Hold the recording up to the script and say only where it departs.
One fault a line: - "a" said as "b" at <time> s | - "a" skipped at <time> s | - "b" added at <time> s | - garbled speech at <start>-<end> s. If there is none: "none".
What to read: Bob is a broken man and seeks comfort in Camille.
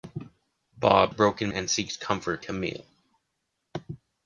- "is" skipped at 1.1 s
- "man" skipped at 1.5 s
- "in" skipped at 2.4 s